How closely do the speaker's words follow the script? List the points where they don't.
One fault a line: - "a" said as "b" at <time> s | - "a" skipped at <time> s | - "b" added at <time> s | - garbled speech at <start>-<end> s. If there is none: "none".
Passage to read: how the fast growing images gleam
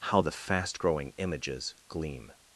none